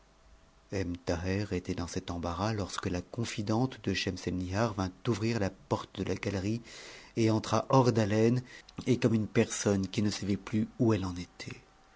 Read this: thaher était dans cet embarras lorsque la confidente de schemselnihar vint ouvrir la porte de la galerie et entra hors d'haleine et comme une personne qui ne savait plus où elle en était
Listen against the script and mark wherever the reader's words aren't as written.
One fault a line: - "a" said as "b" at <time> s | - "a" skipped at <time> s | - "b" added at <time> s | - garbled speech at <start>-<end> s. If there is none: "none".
none